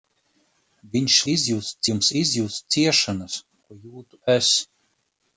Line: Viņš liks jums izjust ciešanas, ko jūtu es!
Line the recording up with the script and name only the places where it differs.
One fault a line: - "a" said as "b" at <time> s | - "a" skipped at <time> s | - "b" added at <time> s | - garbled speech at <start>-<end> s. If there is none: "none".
- "liks" said as "izjust" at 1.3 s